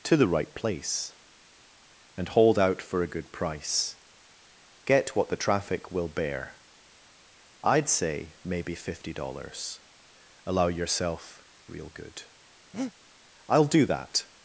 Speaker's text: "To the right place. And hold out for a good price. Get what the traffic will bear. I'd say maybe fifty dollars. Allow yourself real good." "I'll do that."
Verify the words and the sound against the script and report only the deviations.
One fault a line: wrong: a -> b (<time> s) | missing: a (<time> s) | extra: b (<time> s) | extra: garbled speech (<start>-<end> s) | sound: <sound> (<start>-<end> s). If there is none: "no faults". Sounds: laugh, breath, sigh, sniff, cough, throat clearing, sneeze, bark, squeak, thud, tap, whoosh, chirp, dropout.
sound: breath (12.7-12.9 s)